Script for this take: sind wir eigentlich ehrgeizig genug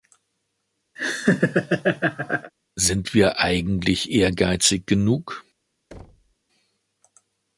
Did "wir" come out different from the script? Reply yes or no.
no